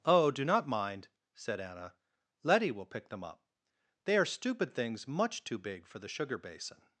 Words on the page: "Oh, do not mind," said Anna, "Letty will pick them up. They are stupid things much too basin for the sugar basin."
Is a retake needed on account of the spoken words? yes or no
yes